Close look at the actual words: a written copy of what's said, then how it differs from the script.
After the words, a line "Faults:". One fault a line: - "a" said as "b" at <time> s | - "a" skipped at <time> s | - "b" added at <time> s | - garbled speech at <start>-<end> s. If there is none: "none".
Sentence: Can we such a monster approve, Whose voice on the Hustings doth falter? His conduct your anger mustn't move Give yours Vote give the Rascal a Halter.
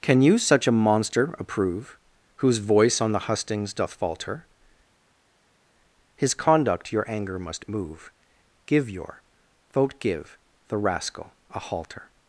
Can you such a monster approve, Whose voice on the Hustings doth falter? His conduct your anger must move Give your Vote give the Rascal a Halter.
Faults:
- "we" said as "you" at 0.2 s
- "mustn't" said as "must" at 7.4 s
- "yours" said as "your" at 8.9 s